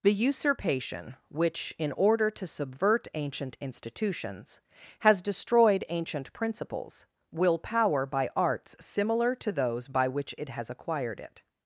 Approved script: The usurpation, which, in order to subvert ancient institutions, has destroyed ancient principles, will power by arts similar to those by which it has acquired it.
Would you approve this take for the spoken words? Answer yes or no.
yes